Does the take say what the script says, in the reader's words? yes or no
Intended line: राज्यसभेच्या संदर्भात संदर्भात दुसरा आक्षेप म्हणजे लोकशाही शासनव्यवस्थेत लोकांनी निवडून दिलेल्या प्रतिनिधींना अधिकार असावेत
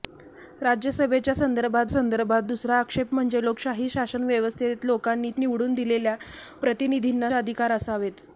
yes